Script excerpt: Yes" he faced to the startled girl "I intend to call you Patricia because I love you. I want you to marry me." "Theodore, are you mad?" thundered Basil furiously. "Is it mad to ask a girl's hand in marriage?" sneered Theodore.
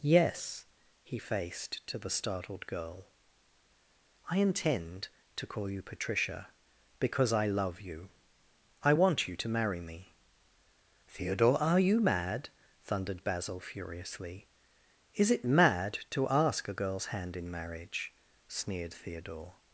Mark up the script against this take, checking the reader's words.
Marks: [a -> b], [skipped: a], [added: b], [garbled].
Yes" he faced to the startled girl "I intend to call you Patricia because I love you. I want you to marry me." "Theodore, are you mad?" thundered Basil furiously. "Is it mad to ask a girl's hand in marriage?" sneered Theodore.